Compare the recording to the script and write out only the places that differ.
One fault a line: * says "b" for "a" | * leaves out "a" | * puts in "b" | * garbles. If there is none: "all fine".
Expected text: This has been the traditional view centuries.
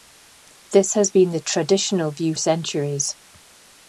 all fine